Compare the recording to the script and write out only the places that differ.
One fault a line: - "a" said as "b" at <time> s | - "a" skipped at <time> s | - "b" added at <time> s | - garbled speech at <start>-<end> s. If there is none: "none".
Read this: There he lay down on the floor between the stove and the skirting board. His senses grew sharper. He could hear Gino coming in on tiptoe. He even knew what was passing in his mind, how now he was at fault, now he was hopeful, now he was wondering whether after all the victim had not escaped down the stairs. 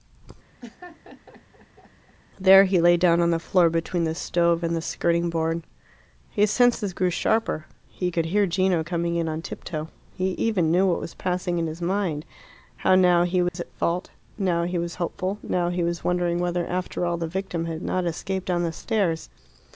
none